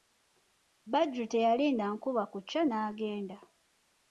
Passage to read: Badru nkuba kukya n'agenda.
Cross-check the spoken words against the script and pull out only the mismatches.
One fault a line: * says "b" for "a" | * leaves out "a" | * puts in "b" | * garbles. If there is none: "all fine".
* puts in "teyalinda"